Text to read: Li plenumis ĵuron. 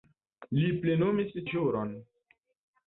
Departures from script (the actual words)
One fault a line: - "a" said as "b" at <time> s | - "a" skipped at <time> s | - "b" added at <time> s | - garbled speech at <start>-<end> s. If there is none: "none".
none